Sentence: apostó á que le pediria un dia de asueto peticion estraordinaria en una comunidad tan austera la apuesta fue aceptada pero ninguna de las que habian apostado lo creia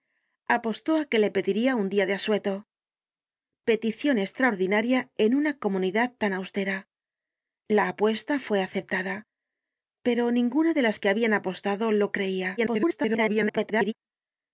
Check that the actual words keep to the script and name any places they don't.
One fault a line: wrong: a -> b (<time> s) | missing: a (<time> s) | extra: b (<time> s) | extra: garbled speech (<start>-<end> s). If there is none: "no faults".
extra: garbled speech (12.6-13.9 s)